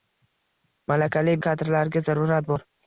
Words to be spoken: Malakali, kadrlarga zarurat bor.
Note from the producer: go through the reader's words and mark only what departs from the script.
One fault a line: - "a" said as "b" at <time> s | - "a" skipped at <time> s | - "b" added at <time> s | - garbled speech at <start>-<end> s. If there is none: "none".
none